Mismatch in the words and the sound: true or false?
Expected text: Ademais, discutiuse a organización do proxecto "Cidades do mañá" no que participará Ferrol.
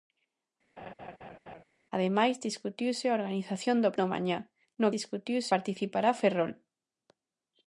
true